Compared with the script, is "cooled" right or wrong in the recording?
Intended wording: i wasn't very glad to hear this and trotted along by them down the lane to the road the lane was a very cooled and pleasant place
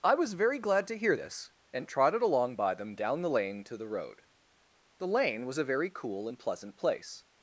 wrong